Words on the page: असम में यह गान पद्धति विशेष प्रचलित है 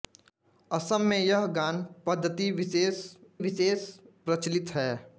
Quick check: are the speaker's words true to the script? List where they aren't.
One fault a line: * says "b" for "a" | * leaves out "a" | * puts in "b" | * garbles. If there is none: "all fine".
* puts in "विशेष"